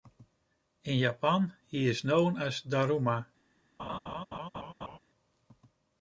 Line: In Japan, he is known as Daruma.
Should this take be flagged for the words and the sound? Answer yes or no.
yes